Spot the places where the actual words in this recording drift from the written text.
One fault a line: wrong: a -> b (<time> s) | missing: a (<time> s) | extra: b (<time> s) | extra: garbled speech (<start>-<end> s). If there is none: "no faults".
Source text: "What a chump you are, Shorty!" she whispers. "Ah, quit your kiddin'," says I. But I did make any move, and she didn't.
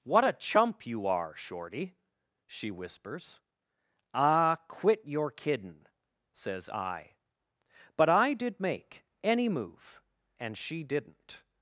no faults